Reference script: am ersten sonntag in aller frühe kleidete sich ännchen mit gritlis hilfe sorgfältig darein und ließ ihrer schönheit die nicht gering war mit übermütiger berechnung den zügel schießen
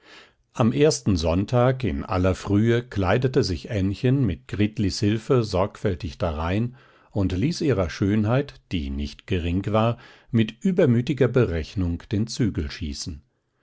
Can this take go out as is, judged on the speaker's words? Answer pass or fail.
pass